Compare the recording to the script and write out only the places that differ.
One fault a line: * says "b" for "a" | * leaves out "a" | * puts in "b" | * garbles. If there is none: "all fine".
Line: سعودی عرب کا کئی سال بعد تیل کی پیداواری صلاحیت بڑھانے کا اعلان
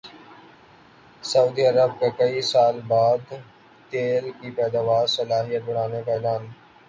all fine